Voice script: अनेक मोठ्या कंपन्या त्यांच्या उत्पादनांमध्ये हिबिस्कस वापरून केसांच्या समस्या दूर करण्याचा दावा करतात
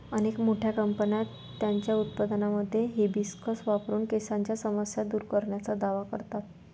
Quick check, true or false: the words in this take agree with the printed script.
true